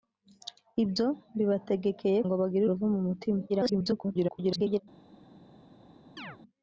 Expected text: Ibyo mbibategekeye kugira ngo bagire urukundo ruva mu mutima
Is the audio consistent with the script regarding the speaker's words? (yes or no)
no